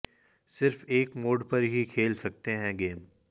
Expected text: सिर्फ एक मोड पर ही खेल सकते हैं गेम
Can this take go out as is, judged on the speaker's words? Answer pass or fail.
pass